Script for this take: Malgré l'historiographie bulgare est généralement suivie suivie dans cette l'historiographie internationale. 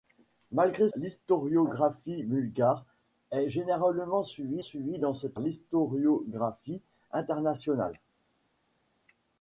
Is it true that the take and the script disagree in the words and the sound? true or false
false